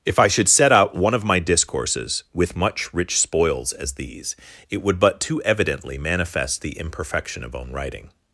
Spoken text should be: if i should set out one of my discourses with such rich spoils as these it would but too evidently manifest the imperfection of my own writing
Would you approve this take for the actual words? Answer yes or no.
no